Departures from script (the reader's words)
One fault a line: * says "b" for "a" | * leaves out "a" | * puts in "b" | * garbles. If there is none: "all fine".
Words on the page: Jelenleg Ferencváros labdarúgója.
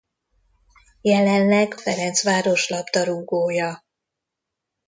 all fine